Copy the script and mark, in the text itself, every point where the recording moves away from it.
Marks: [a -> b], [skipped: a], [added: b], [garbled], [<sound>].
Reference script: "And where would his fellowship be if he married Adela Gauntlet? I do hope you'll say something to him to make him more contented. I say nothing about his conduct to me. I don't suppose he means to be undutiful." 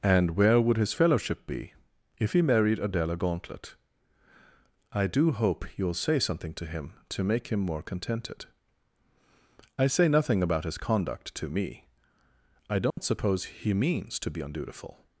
"And where would his fellowship be if he married Adela Gauntlet? I do hope you'll say something to him to make him more contented. I say nothing about his conduct to me. I don't [dropout] suppose he means to be undutiful."